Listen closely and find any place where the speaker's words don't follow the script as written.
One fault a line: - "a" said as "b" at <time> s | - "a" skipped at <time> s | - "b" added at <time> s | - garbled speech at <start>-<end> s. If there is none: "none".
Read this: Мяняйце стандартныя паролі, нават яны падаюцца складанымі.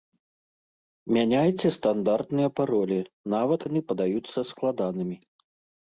none